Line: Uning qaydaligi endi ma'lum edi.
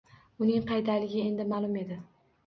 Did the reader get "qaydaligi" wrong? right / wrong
right